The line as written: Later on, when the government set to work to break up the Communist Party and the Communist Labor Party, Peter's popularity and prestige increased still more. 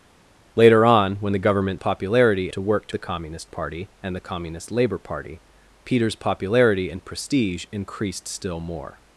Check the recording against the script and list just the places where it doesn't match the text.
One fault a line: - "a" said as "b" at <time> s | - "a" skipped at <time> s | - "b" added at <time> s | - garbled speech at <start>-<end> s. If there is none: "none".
- "set" said as "popularity" at 1.8 s
- "break up" skipped at 2.9 s